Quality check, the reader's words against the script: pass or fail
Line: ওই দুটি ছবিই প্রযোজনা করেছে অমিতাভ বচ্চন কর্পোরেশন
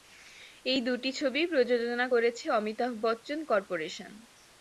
fail